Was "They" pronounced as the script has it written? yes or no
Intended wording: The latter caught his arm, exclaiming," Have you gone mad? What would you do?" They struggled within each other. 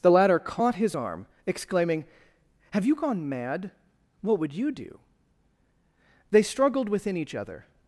yes